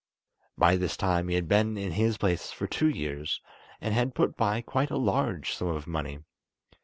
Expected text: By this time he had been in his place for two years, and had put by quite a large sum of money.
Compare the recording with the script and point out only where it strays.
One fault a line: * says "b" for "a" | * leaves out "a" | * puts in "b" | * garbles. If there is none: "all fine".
all fine